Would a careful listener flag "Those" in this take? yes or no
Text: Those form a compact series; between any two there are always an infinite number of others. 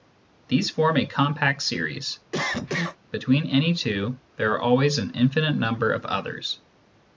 yes